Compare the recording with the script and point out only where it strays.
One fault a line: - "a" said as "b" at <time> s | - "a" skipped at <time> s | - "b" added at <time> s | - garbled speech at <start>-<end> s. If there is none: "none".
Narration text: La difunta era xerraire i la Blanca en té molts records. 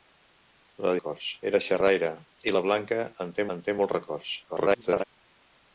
- "difunta" said as "records" at 1.0 s
- "en té" added at 3.6 s
- garbled speech at 4.5-5.0 s